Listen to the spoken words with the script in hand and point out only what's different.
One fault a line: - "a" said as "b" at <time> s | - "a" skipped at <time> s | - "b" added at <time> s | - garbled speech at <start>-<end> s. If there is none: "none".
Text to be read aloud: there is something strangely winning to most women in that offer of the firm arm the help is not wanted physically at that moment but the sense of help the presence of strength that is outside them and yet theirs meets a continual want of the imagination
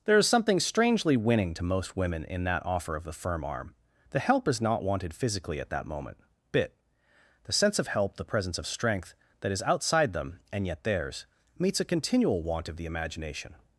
- "but" said as "bit" at 6.5 s